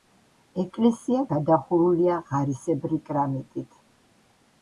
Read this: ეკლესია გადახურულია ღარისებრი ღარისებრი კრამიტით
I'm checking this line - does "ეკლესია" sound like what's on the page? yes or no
yes